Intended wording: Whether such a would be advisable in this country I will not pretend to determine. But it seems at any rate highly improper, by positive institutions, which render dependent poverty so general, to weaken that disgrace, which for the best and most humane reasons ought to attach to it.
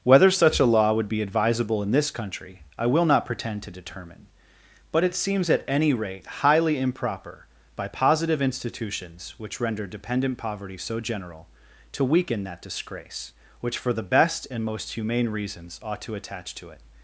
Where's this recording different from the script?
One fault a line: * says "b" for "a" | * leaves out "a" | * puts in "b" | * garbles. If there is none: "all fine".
* puts in "law"